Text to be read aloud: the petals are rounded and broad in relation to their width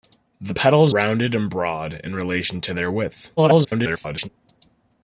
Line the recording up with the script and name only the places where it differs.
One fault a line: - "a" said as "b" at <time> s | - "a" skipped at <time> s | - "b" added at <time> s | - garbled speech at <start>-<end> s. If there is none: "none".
- "are" skipped at 0.9 s
- garbled speech at 3.4-4.3 s